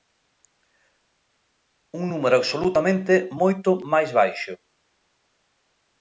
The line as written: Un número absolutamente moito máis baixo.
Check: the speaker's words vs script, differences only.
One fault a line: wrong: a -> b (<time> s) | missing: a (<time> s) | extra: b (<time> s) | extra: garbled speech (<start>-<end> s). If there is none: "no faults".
no faults